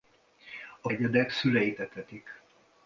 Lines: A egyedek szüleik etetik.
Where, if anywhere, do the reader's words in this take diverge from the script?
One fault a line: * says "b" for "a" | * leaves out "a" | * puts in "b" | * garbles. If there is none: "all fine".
all fine